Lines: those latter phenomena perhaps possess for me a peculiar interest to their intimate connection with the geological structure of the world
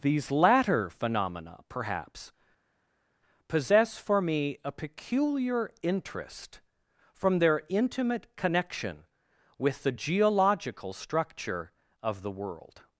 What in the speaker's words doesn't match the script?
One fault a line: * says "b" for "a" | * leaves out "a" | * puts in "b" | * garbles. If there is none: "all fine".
* says "these" for "those"
* says "from" for "to"